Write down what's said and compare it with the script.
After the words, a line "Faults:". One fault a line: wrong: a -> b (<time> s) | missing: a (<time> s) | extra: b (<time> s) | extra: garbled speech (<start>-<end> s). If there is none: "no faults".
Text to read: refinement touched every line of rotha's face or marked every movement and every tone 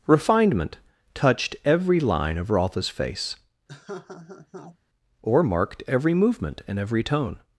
refinement touched every line of rotha's face or marked every movement and every tone
Faults:
no faults